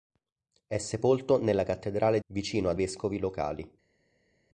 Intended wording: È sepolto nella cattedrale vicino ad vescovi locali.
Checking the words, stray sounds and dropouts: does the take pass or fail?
pass